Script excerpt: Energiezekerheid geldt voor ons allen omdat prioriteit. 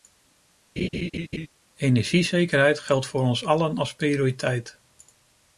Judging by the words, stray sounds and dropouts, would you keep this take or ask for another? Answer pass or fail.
fail